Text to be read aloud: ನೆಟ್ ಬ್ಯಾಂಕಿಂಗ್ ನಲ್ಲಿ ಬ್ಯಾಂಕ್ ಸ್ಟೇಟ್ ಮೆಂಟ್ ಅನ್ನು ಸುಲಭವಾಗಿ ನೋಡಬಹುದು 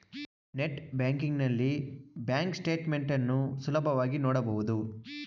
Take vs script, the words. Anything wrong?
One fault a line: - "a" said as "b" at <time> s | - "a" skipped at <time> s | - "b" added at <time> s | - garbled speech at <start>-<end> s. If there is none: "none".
none